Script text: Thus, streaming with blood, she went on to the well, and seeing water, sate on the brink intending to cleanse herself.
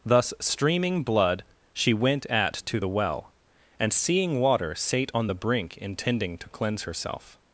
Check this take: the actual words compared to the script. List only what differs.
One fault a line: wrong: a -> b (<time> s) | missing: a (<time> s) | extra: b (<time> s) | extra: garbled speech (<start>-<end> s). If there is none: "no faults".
missing: with (1.0 s)
wrong: on -> at (2.3 s)